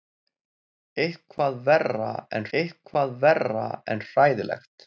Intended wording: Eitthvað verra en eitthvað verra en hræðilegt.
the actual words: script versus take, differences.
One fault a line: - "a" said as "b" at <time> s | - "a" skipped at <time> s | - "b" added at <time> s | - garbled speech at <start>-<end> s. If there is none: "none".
none